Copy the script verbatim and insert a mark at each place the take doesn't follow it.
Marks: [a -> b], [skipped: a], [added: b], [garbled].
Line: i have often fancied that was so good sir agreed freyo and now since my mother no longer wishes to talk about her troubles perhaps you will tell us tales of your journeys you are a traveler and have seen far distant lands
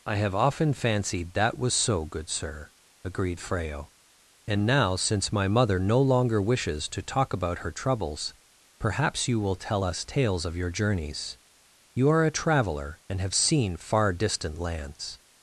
i have often fancied that was so good sir agreed freyo and now since my mother no longer wishes to talk about her troubles perhaps you will tell us tales of your journeys you are a traveler and have seen far distant lands